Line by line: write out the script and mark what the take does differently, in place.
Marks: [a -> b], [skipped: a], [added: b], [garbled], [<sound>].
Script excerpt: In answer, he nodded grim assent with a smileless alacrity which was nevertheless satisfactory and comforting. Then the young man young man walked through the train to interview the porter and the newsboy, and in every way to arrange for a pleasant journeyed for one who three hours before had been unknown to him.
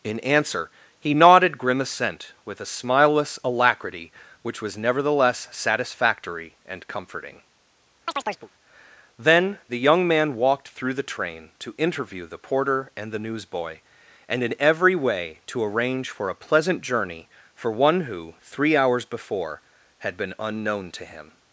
In answer, he nodded grim assent with a smileless alacrity which was nevertheless satisfactory and comforting. [chirp] Then the young man [skipped: young man] walked through the train to interview the porter and the newsboy, and in every way to arrange for a pleasant [journeyed -> journey] for one who three hours before had been unknown to him.